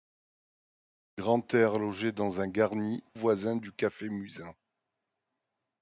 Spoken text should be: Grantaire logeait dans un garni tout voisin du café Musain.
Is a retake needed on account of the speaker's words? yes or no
yes